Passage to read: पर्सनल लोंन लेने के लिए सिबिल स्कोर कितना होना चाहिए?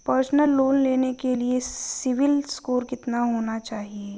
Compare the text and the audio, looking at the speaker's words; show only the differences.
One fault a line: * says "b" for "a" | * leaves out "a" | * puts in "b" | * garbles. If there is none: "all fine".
all fine